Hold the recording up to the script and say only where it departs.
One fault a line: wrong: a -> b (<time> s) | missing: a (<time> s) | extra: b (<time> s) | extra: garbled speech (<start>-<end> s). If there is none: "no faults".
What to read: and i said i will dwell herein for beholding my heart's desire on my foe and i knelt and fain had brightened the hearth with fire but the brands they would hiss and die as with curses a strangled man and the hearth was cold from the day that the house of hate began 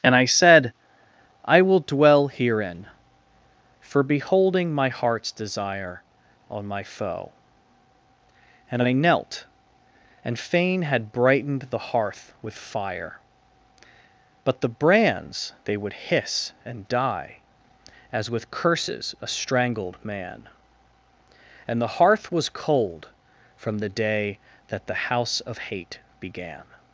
no faults